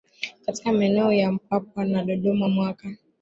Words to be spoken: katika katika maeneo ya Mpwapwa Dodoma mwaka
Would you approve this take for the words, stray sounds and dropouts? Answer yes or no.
no